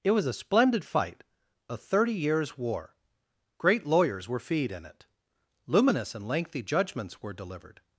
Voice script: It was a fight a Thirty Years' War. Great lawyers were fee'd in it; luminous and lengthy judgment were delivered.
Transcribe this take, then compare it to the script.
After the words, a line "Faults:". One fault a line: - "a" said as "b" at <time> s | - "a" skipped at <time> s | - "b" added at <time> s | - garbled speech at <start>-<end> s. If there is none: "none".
It was a splendid fight a Thirty Years' War. Great lawyers were fee'd in it; luminous and lengthy judgments were delivered.
Faults:
- "splendid" added at 0.3 s
- "judgment" said as "judgments" at 6.6 s